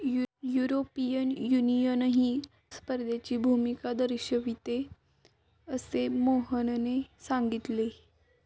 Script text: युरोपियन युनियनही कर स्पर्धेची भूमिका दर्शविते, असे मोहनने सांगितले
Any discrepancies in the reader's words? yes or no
yes